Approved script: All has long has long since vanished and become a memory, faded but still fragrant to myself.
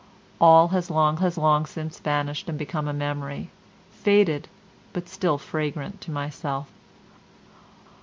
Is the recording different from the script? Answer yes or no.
no